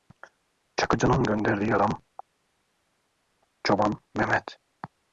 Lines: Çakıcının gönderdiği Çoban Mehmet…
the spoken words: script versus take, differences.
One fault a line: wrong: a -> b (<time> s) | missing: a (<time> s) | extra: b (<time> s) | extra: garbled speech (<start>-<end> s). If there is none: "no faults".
extra: adam (1.7 s)